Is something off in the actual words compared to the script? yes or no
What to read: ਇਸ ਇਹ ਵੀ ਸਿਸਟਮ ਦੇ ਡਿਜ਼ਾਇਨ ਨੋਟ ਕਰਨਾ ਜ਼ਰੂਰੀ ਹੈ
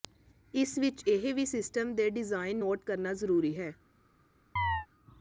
yes